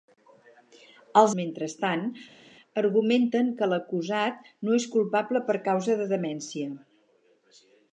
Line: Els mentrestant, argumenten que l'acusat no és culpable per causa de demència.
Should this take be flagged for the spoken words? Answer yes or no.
no